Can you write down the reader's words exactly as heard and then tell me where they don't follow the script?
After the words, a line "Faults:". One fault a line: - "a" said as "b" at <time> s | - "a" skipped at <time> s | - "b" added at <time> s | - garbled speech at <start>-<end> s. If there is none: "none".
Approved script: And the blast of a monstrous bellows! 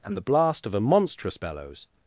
And the blast of a monstrous bellows!
Faults:
none